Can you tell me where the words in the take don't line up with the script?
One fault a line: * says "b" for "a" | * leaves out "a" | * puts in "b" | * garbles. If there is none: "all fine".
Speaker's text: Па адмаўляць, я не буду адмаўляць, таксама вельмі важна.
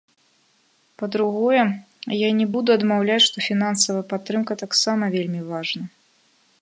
* says "другое" for "адмаўляць"
* puts in "што фінансавая падтрымка"